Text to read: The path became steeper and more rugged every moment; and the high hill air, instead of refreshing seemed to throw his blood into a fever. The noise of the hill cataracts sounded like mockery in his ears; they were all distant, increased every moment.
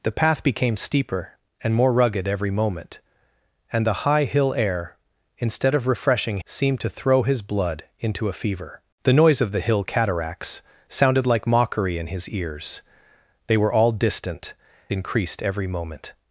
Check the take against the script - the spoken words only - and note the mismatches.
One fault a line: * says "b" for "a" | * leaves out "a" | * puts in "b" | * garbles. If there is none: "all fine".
all fine